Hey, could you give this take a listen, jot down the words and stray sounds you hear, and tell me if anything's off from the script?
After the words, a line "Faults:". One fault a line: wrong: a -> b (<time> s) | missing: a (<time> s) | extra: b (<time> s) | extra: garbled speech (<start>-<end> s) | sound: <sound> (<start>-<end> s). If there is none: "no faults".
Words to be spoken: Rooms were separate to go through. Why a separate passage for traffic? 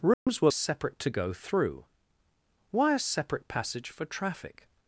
Rooms were separate to go through. Why a separate passage for traffic?
Faults:
sound: dropout (0.1-0.3 s)